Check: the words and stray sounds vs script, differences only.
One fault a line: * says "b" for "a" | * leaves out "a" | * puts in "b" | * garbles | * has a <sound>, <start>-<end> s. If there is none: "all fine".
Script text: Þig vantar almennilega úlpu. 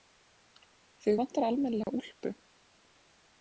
* has a dropout, 1.8-1.9 s